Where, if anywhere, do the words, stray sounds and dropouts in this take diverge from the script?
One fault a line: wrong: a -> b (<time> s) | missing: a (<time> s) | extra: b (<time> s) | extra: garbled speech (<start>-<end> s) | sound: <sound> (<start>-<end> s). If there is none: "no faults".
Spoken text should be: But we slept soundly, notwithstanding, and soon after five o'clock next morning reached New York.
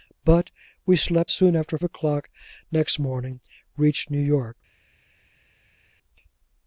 missing: soundly notwithstanding and (1.3 s)
missing: five (1.8 s)